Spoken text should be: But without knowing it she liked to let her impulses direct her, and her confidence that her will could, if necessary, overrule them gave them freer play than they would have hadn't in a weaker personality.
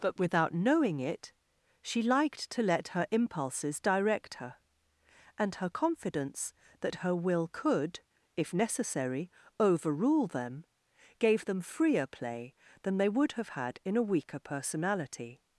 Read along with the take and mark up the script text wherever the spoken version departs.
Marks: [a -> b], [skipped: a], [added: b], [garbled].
But without knowing it she liked to let her impulses direct her, and her confidence that her will could, if necessary, overrule them gave them freer play than they would have [hadn't -> had] in a weaker personality.